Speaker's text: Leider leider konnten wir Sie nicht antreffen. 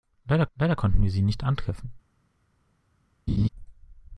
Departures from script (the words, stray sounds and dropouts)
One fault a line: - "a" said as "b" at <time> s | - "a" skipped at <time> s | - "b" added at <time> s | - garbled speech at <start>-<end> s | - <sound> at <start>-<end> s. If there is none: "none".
- laugh at 3.3-3.5 s